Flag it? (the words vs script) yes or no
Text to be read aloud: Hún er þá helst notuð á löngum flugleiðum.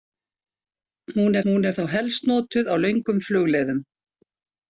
yes